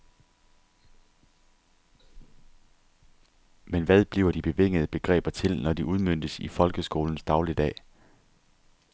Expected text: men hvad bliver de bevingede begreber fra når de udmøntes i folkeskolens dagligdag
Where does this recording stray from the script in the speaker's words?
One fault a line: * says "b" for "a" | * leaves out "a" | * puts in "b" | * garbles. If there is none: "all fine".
* says "til" for "fra"